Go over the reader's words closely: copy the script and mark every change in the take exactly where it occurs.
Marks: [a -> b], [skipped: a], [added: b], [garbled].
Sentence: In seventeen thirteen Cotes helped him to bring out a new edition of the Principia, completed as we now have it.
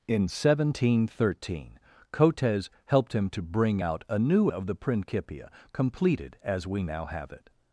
In seventeen thirteen Cotes helped him to bring out a new [skipped: edition] of the Principia, completed as we now have it.